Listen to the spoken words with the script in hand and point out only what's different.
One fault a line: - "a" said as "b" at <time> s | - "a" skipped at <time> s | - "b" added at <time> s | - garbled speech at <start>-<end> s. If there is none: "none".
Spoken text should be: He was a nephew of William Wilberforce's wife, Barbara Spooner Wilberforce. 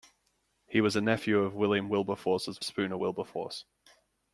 - "wife Barbara" skipped at 2.6 s